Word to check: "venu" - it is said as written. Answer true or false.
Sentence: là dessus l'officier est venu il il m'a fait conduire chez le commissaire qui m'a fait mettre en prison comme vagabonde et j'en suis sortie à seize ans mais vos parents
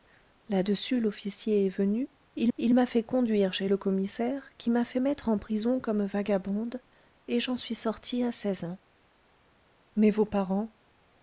true